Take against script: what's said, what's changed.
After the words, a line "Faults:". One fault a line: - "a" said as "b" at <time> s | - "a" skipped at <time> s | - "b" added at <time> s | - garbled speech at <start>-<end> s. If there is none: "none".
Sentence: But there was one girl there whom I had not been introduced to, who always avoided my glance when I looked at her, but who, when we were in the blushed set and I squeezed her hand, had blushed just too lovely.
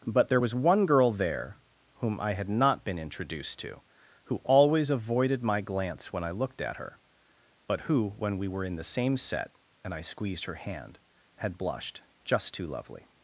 But there was one girl there whom I had not been introduced to, who always avoided my glance when I looked at her, but who, when we were in the same set and I squeezed her hand, had blushed just too lovely.
Faults:
- "blushed" said as "same" at 8.8 s